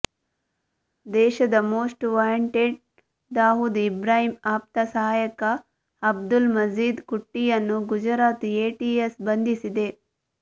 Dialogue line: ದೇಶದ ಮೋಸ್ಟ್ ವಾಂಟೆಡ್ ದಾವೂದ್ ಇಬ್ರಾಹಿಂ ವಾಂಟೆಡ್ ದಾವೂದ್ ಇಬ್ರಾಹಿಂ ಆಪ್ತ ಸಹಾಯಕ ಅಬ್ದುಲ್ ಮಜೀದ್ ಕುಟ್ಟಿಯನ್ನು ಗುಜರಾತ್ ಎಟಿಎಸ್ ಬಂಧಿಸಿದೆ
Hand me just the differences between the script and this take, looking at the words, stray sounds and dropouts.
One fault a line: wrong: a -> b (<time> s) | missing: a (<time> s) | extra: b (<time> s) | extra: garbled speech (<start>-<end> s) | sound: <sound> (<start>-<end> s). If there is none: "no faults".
missing: ವಾಂಟೆಡ್ ದಾವೂದ್ ಇಬ್ರಾಹಿಂ (4.3 s)